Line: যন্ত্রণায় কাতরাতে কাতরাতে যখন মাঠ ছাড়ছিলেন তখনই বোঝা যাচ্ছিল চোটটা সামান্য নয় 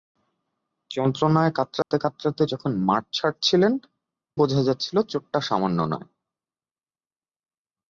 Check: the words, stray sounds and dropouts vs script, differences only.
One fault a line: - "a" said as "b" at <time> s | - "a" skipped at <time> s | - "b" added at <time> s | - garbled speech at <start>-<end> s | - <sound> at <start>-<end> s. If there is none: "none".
- dropout at 1.8-1.9 s
- "তখনই" skipped at 3.7 s